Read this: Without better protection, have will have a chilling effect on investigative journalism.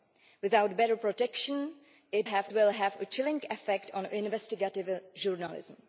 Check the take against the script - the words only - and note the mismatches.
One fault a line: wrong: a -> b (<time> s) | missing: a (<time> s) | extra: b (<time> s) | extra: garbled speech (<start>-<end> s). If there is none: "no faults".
no faults